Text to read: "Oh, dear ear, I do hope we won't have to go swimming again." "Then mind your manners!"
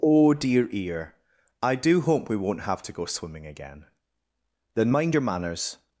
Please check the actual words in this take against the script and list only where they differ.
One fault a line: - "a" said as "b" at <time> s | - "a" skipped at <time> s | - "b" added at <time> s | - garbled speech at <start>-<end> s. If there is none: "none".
none